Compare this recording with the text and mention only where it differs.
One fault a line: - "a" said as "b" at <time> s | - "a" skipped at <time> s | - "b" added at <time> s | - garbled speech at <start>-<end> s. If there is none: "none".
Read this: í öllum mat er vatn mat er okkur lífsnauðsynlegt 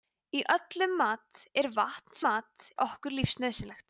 none